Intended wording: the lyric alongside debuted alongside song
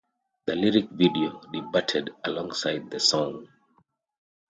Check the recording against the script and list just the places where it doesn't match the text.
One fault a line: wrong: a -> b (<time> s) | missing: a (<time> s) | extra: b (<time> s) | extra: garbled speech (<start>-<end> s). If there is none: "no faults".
wrong: alongside -> video (0.9 s)
extra: the (2.9 s)